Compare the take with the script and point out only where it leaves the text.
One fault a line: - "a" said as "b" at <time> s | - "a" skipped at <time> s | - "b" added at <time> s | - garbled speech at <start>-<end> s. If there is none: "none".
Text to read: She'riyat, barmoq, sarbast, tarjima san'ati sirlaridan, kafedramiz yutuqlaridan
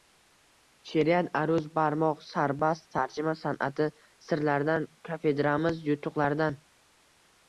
- "aruz" added at 1.4 s